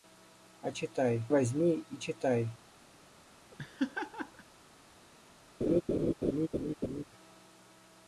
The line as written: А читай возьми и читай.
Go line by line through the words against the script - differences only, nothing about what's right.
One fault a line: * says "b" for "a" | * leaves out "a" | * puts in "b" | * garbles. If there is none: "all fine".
all fine